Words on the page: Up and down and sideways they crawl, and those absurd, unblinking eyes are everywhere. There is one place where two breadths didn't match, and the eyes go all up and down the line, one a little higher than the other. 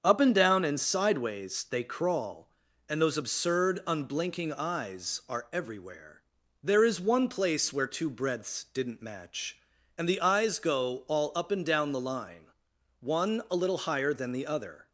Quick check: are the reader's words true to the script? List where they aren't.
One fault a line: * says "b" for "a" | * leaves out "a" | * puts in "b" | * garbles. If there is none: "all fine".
all fine